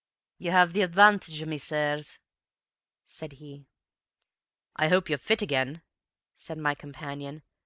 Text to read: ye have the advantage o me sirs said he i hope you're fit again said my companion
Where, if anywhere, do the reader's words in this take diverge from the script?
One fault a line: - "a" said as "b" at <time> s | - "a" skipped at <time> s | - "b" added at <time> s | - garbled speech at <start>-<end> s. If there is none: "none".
none